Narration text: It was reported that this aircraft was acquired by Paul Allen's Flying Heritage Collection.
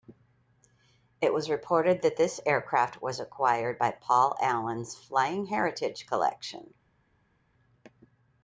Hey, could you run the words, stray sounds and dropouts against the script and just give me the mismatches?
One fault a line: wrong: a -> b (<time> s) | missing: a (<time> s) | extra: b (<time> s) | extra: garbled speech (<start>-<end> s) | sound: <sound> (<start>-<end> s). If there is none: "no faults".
no faults